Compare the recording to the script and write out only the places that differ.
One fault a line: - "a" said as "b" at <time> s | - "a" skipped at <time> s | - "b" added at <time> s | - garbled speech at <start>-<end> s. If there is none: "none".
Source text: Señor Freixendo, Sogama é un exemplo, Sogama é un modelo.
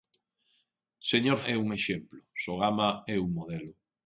- "Freixendo Sogama" skipped at 1.4 s